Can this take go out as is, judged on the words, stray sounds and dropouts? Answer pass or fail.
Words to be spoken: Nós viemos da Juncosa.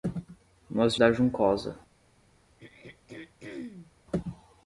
fail